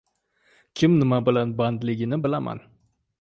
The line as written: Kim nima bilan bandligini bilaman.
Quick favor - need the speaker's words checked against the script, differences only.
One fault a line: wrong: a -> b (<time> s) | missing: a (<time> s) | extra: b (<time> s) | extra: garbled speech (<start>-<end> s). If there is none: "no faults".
no faults